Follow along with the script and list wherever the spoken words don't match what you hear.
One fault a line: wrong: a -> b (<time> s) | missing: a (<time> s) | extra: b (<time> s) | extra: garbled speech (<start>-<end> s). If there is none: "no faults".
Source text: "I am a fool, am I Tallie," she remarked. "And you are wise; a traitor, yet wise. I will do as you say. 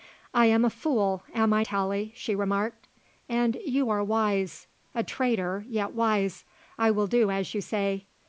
no faults